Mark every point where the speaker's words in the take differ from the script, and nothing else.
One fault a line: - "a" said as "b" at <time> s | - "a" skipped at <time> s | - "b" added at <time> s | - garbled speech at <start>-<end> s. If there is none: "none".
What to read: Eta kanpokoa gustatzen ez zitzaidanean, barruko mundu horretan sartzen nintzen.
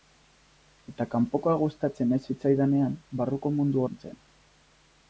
- "horretan sartzen" skipped at 3.9 s